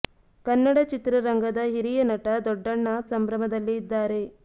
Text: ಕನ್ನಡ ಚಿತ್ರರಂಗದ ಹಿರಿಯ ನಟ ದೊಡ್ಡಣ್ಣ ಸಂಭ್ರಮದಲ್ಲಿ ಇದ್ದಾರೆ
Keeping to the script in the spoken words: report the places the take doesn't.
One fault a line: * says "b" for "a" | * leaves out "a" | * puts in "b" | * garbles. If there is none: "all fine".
all fine